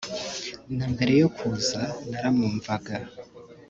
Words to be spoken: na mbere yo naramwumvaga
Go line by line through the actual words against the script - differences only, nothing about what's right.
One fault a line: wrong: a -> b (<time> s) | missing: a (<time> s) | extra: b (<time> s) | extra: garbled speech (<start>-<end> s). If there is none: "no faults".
extra: kuza (1.4 s)